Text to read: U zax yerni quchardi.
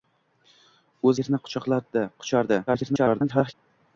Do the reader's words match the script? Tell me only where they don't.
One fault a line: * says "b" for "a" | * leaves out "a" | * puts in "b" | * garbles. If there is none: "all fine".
* leaves out "zax"
* garbles